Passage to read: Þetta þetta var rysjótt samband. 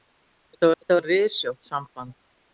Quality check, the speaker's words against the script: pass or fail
pass